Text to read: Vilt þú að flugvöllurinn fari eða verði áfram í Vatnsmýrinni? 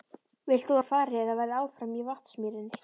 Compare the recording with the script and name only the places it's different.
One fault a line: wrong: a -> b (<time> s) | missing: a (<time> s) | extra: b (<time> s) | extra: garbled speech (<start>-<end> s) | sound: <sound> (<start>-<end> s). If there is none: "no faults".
missing: flugvöllurinn (0.8 s)